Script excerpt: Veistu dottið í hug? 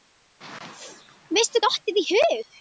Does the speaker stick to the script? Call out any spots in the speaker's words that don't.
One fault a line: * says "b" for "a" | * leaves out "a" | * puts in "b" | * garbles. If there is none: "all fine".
all fine